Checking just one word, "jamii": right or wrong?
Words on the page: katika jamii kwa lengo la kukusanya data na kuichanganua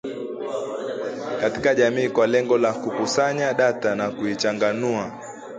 right